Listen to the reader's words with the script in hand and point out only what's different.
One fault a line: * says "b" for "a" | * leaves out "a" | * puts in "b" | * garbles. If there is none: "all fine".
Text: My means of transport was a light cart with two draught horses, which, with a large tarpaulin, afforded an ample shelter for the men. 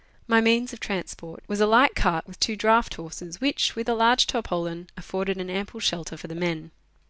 all fine